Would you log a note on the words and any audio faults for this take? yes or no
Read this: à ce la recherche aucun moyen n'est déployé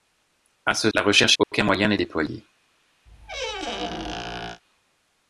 yes